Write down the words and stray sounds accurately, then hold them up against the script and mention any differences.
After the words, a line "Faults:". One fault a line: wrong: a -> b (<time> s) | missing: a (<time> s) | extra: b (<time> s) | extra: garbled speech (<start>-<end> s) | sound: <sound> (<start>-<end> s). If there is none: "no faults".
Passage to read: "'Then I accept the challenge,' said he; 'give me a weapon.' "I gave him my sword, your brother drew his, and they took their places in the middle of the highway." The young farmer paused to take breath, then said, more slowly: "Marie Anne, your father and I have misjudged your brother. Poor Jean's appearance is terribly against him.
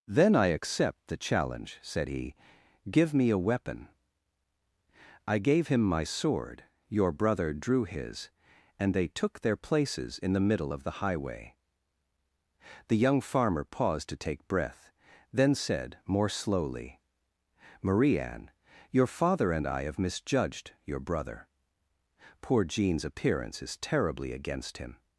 "'Then I accept the challenge,' said he; 'give me a weapon.' "I gave him my sword, your brother drew his, and they took their places in the middle of the highway." The young farmer paused to take breath, then said, more slowly: "Marie Anne, your father and I have misjudged your brother. Poor Jean's appearance is terribly against him.
Faults:
no faults